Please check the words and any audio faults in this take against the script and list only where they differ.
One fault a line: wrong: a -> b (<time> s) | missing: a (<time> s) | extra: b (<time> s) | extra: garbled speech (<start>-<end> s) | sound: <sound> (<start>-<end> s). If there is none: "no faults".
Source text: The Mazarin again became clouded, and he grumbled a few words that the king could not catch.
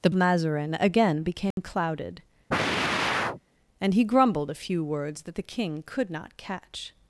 sound: dropout (1.5-1.6 s)
sound: sigh (2.5-3.4 s)